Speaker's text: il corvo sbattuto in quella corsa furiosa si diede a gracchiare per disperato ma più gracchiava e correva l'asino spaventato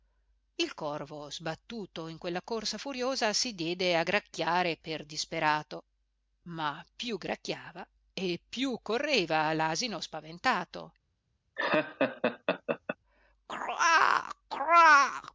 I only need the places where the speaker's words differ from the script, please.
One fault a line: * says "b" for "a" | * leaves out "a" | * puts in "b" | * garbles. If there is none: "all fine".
* puts in "più"